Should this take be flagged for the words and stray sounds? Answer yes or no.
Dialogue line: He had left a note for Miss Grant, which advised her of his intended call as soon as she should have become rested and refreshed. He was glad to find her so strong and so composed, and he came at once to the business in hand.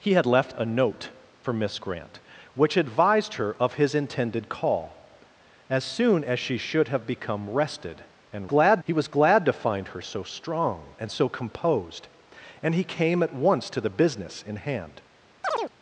yes